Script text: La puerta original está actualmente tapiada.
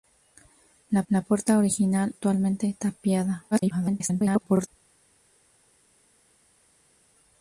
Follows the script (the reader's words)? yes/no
no